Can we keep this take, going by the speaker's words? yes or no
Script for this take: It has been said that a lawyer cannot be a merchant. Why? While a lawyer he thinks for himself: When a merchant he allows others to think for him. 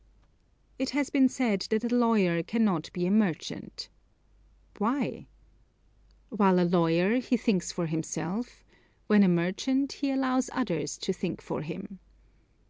yes